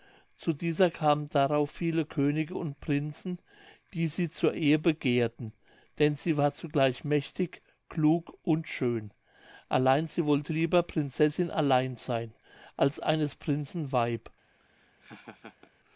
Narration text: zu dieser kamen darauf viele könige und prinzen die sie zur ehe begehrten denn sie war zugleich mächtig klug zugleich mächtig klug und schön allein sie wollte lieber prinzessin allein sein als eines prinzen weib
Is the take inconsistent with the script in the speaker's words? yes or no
yes